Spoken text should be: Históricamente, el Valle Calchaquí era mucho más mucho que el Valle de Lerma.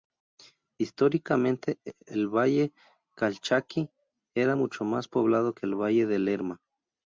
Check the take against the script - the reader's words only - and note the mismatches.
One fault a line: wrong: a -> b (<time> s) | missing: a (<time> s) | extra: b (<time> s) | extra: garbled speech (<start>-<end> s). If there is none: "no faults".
wrong: mucho -> poblado (5.1 s)